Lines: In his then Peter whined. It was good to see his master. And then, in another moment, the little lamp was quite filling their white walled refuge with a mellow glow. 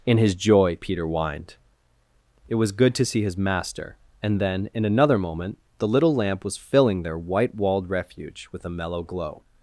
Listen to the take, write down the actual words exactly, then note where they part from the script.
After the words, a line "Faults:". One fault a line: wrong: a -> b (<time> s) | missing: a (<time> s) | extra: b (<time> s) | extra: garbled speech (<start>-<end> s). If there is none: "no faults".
In his joy Peter whined. It was good to see his master. And then, in another moment, the little lamp was filling their white walled refuge with a mellow glow.
Faults:
wrong: then -> joy (0.3 s)
missing: quite (6.6 s)